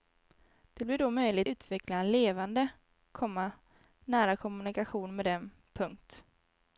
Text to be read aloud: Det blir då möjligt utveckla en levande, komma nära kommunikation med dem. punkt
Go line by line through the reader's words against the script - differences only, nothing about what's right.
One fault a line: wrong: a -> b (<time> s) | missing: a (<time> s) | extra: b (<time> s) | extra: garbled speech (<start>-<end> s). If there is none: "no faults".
no faults